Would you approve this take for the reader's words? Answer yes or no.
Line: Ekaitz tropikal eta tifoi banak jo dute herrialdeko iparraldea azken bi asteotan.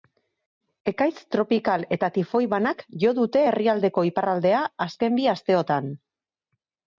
yes